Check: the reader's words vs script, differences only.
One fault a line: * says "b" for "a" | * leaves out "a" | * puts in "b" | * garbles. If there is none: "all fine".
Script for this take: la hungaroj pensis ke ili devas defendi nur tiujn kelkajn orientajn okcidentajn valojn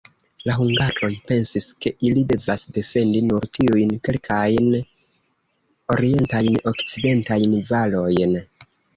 all fine